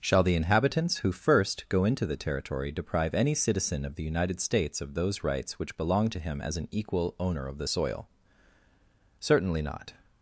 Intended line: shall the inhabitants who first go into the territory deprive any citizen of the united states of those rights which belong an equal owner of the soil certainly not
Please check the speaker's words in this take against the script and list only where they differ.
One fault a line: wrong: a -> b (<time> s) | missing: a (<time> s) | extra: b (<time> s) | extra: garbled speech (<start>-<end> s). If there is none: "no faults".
extra: to him as (6.1 s)